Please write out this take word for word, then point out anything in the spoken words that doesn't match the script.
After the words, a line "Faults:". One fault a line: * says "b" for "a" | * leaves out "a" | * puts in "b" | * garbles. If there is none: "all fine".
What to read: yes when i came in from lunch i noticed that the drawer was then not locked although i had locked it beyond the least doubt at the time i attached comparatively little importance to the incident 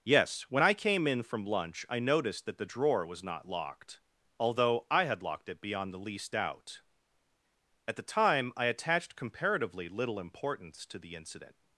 yes when i came in from lunch i noticed that the drawer was not locked although i had locked it beyond the least doubt at the time i attached comparatively little importance to the incident
Faults:
* leaves out "then"